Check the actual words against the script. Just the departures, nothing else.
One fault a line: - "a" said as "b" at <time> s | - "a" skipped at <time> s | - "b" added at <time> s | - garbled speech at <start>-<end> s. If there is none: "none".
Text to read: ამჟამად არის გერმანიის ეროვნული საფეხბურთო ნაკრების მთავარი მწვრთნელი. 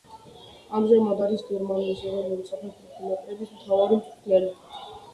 none